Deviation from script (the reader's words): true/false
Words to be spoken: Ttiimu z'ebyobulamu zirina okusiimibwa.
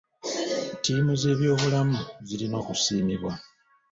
false